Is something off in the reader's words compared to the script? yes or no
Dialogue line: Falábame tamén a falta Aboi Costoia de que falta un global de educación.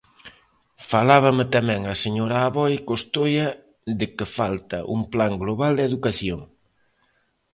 yes